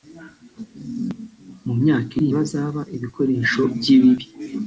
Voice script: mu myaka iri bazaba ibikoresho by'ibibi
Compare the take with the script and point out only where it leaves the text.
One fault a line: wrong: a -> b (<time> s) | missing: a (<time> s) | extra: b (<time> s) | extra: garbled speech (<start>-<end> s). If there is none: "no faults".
no faults